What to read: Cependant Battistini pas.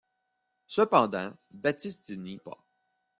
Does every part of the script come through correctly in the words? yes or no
yes